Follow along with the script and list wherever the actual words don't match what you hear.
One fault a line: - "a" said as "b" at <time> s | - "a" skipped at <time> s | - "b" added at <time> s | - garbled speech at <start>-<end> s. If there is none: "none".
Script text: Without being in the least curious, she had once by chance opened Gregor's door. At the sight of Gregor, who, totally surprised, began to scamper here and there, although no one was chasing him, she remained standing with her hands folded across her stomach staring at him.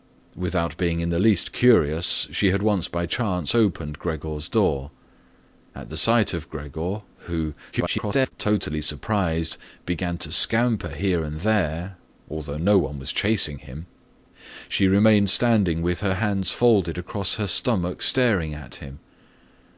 - garbled speech at 7.7-8.3 s